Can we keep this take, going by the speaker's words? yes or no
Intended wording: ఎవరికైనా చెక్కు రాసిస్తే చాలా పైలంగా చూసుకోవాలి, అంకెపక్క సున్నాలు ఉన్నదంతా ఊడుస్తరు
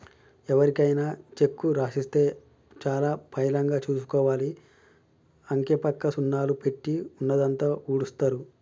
no